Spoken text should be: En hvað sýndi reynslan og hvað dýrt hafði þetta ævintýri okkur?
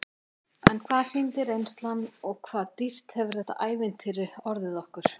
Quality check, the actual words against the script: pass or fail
fail